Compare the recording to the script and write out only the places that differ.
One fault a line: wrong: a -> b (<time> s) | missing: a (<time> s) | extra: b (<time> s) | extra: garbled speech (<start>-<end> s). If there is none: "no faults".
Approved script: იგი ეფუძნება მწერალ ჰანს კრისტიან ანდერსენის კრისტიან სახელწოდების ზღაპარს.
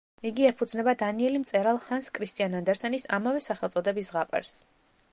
extra: დანიელი (1.0 s)
wrong: კრისტიან -> ამავე (3.2 s)